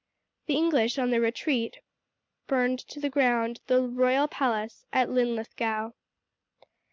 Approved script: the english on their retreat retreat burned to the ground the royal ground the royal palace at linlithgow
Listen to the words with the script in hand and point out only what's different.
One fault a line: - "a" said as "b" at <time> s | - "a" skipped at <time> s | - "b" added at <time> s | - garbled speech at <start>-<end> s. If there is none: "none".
- "retreat" skipped at 1.8 s
- "ground the royal" skipped at 4.3 s